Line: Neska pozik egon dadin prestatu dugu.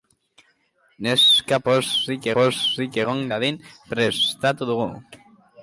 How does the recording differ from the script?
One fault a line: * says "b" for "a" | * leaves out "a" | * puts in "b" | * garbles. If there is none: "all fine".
* puts in "pozik"